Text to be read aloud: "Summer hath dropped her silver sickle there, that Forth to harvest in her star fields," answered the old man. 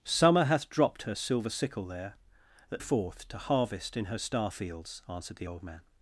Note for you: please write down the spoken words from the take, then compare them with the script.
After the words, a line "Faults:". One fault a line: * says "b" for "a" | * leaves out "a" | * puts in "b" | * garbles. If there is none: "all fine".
"Summer hath dropped her silver sickle there, that Forth to harvest in her star fields," answered the old man.
Faults:
all fine